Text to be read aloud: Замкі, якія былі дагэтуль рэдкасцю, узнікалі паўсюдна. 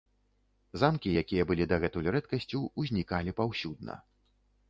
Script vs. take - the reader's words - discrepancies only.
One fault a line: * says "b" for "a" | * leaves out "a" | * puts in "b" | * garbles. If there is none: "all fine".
all fine